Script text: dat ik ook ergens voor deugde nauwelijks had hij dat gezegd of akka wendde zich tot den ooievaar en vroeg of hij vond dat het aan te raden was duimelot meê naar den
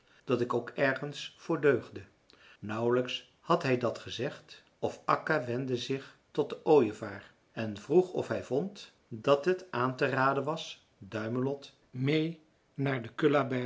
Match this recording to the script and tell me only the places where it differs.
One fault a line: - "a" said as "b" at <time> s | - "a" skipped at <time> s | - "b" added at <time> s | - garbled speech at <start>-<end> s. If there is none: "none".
none